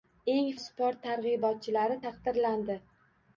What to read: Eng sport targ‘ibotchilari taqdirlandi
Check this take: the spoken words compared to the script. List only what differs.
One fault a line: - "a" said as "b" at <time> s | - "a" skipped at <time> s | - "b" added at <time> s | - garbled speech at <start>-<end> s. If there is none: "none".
none